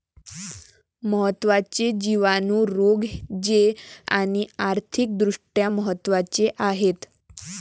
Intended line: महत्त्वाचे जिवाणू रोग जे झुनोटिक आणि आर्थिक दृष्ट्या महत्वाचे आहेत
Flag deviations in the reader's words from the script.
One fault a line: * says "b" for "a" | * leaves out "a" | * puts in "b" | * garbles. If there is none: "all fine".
* leaves out "झुनोटिक"